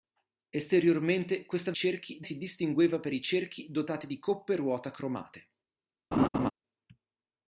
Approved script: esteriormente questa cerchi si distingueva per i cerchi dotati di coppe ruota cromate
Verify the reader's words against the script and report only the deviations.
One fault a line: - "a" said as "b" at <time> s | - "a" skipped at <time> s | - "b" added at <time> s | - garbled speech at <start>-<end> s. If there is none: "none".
none